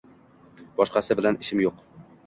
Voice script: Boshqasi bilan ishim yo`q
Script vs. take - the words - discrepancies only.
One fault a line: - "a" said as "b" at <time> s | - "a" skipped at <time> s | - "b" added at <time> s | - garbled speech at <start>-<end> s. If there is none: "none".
none